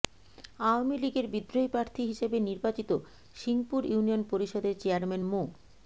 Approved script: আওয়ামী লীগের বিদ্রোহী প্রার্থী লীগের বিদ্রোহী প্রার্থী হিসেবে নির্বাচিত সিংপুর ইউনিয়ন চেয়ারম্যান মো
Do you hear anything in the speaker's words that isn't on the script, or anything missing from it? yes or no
yes